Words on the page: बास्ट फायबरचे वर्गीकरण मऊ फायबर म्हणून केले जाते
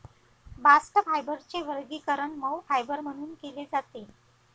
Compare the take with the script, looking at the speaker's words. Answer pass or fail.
pass